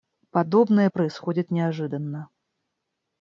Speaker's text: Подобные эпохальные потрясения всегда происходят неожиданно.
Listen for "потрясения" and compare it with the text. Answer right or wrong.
wrong